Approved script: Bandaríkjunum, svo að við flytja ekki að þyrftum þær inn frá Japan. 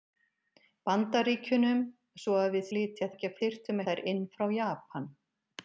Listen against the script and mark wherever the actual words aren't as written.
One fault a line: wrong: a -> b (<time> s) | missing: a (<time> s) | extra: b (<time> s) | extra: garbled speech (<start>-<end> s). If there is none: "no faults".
no faults